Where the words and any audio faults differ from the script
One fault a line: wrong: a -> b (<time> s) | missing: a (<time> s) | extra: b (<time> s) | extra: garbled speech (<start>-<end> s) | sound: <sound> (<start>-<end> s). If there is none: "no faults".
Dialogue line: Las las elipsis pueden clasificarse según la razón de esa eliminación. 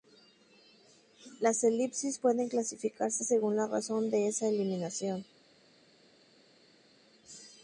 missing: las (1.6 s)